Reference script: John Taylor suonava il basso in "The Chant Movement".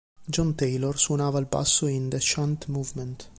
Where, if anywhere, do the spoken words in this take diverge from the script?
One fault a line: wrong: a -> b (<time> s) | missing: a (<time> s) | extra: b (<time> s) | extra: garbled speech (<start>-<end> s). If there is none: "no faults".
no faults